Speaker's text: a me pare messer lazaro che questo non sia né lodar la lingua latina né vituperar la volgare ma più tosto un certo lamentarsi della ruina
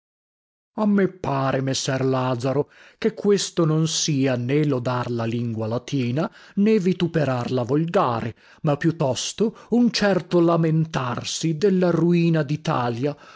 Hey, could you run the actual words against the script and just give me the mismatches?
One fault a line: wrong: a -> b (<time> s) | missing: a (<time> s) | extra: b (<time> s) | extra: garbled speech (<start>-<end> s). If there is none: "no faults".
no faults